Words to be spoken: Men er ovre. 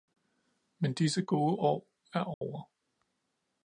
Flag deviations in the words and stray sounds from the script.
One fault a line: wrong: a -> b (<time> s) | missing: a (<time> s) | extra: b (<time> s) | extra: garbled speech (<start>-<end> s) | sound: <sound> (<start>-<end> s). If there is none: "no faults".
extra: disse gode år (0.9 s)
sound: dropout (2.3-2.4 s)